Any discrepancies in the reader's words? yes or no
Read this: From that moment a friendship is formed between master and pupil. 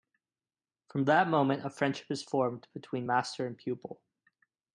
no